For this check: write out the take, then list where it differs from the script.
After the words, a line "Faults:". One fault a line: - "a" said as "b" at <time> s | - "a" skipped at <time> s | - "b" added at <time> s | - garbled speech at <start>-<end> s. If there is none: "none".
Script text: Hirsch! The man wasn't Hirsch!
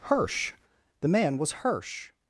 Hirsch! The man was Hirsch!
Faults:
- "wasn't" said as "was" at 1.4 s